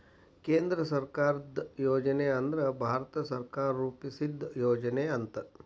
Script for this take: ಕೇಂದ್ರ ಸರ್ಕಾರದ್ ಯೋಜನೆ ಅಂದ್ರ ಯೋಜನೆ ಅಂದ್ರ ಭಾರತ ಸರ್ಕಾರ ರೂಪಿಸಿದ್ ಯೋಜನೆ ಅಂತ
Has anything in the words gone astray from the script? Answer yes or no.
yes